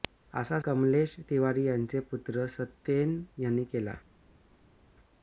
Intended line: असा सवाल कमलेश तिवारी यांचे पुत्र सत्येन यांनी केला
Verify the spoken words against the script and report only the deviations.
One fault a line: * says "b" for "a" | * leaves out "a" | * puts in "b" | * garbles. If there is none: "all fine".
* leaves out "सवाल"